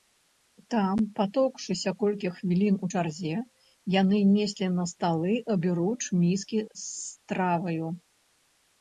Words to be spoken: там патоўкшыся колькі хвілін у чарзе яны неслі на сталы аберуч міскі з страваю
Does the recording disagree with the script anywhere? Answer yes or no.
no